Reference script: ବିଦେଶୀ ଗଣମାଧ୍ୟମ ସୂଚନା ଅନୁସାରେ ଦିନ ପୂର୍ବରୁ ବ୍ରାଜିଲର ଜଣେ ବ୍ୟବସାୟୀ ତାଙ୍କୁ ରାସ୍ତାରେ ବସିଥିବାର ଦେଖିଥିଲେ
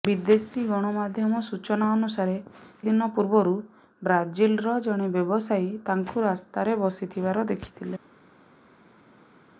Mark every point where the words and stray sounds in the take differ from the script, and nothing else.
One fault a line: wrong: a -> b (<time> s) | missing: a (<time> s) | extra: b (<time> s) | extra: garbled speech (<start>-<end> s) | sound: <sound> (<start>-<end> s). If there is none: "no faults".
no faults